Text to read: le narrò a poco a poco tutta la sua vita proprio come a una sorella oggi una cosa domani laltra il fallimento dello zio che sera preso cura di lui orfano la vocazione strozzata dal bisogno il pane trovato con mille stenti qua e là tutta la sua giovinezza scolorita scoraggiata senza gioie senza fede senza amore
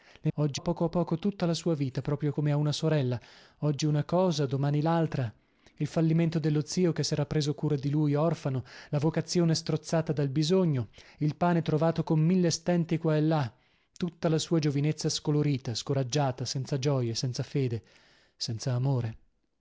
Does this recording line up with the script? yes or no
no